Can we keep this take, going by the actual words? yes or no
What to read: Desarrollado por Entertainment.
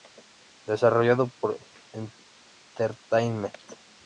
yes